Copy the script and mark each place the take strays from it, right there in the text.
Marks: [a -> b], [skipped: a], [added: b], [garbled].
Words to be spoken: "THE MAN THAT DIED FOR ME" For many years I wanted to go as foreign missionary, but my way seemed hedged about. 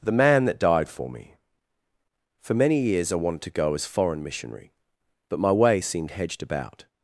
"THE MAN THAT DIED FOR ME" For many years I wanted to go as foreign missionary, but my way seemed hedged about.